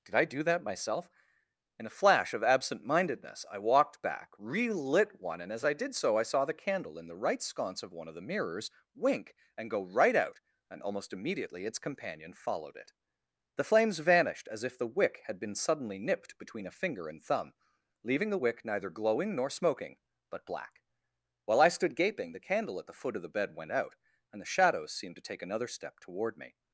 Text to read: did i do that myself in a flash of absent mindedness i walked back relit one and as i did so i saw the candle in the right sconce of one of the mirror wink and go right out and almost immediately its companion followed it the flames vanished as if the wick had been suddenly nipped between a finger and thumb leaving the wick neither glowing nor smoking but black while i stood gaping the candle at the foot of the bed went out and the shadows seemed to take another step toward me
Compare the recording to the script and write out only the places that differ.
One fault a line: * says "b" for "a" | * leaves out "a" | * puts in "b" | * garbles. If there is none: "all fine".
* says "mirrors" for "mirror"